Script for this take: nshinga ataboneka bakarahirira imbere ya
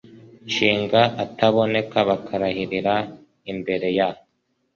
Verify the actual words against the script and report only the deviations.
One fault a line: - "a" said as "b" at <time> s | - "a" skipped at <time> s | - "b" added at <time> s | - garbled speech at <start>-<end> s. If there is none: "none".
none